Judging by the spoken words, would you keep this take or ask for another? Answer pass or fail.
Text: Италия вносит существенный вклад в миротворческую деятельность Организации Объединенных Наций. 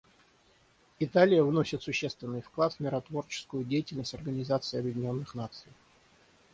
pass